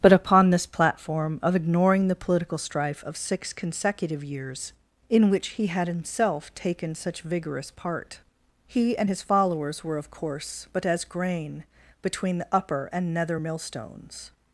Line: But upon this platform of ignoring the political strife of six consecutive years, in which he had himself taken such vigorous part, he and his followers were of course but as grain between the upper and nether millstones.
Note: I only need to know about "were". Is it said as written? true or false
true